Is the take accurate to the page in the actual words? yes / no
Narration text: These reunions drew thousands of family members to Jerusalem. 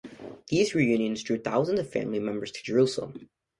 yes